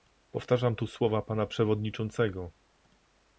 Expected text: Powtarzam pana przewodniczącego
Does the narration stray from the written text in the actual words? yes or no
yes